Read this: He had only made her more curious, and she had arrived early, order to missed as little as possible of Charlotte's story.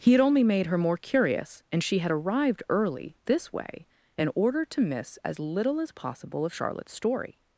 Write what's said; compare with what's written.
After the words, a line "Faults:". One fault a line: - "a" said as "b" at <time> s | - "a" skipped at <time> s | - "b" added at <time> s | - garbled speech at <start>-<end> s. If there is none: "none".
He had only made her more curious, and she had arrived early, this way, in order to miss as little as possible of Charlotte's story.
Faults:
- "this way in" added at 3.2 s
- "missed" said as "miss" at 4.8 s